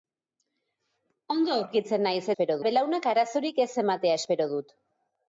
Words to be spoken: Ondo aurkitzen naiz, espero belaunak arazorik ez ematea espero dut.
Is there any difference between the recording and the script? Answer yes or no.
no